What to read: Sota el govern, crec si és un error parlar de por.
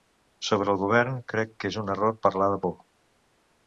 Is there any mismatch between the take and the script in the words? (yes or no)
yes